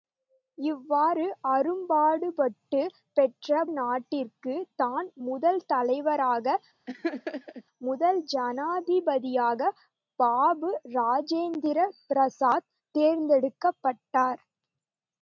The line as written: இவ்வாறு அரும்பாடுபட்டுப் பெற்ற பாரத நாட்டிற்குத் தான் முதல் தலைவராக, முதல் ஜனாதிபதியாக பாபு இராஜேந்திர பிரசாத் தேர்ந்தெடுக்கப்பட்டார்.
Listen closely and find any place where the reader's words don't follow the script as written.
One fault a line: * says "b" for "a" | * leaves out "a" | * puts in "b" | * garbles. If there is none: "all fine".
* leaves out "பாரத"